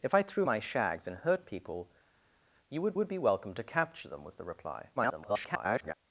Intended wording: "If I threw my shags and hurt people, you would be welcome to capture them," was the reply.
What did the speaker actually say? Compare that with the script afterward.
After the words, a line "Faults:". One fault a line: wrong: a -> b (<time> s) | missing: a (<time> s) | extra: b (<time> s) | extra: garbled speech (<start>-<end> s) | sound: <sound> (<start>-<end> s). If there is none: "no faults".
"If I threw my shags and hurt people, you would would be welcome to capture them," was the reply. [garbled]
Faults:
extra: would (3.0 s)
extra: garbled speech (5.0-5.9 s)